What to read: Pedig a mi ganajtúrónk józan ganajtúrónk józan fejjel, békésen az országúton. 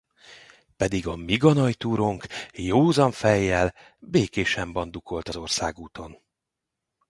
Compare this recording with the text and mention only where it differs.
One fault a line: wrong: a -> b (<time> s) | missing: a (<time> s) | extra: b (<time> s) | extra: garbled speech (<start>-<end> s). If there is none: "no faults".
missing: ganajtúrónk józan (3.1 s)
extra: bandukolt (4.7 s)